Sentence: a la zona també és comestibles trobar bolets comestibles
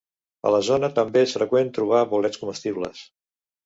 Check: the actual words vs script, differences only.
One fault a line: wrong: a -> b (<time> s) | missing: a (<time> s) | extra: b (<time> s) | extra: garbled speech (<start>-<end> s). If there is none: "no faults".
wrong: comestibles -> freqüent (1.4 s)